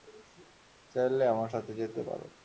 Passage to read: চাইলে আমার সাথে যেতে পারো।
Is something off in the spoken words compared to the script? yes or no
no